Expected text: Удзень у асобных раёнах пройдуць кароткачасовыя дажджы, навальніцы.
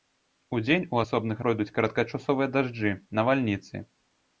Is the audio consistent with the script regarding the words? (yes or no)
no